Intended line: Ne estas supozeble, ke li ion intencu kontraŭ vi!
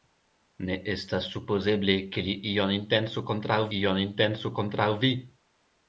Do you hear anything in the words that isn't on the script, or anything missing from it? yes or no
yes